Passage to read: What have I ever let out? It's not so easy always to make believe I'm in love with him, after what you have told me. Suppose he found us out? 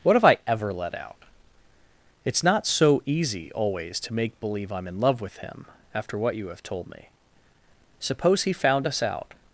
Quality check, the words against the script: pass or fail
pass